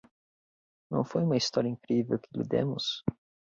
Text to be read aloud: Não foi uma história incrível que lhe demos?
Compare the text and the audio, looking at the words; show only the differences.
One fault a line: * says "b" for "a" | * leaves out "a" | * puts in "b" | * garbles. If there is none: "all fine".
all fine